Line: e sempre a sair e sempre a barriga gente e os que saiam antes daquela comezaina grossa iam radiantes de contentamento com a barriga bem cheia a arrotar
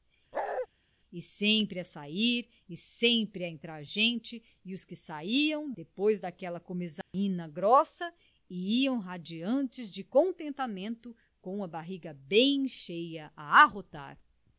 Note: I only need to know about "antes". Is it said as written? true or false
false